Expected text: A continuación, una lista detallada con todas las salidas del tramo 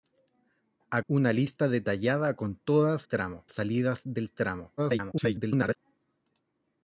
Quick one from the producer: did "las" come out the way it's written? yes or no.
no